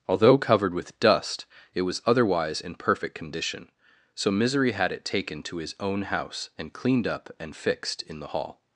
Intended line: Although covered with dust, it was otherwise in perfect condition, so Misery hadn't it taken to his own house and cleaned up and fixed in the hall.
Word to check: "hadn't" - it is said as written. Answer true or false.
false